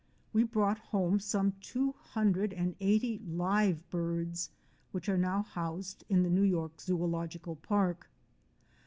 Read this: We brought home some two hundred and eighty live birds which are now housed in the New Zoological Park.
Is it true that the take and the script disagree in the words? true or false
true